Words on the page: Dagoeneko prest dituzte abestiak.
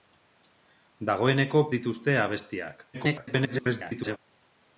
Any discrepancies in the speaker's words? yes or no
yes